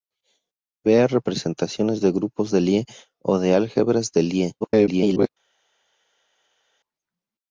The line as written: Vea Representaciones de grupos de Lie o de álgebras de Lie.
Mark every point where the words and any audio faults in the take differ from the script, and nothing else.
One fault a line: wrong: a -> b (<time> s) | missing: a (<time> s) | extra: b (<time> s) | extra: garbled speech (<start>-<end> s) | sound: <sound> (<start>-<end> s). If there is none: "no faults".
extra: garbled speech (4.6-5.3 s)